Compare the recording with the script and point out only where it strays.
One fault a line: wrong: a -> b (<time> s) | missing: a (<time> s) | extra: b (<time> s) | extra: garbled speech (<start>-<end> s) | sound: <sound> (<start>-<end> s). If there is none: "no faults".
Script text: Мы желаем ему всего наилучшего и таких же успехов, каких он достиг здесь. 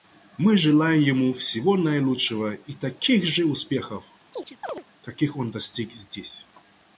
sound: chirp (4.3-4.8 s)